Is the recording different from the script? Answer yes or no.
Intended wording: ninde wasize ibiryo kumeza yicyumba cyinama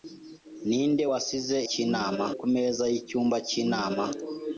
yes